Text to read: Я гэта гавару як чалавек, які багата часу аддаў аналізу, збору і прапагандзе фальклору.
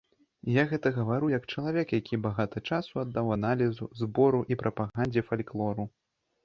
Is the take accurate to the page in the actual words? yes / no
yes